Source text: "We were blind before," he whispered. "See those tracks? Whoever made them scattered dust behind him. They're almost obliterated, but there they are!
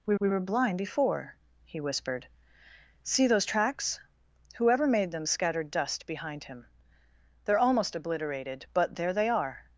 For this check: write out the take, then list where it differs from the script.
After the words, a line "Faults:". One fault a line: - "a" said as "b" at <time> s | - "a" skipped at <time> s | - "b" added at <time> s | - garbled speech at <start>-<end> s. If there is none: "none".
"We we were blind before," he whispered. "See those tracks? Whoever made them scattered dust behind him. They're almost obliterated, but there they are!
Faults:
- "we" added at 0.2 s